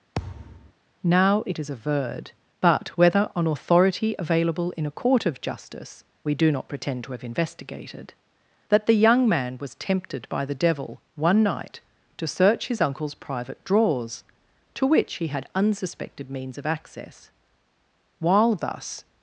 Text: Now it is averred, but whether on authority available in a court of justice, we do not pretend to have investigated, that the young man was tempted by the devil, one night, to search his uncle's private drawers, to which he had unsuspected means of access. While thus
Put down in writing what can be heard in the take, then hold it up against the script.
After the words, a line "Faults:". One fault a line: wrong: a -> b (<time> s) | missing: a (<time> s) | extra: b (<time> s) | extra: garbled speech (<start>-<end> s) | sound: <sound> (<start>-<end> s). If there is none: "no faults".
Now it is averred, but whether on authority available in a court of justice, we do not pretend to have investigated, that the young man was tempted by the devil, one night, to search his uncle's private drawers, to which he had unsuspected means of access. While thus
Faults:
sound: thud (0.1-0.7 s)